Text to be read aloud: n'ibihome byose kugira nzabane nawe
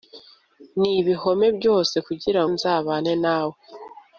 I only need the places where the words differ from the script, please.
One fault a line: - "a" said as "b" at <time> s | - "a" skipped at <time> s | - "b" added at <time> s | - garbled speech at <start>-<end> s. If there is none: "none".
none